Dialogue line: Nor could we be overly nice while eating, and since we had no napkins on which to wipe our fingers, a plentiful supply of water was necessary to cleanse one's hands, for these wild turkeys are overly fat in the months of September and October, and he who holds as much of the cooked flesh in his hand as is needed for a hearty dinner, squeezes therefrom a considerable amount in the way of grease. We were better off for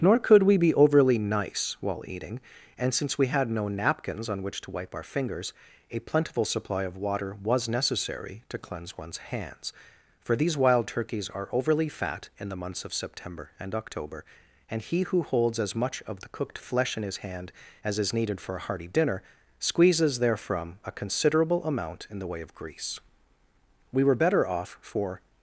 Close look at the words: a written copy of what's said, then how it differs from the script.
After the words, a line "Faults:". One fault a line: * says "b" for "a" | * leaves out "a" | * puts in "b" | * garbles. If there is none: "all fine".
Nor could we be overly nice while eating, and since we had no napkins on which to wipe our fingers, a plentiful supply of water was necessary to cleanse one's hands, for these wild turkeys are overly fat in the months of September and October, and he who holds as much of the cooked flesh in his hand as is needed for a hearty dinner, squeezes therefrom a considerable amount in the way of grease. We were better off for
Faults:
all fine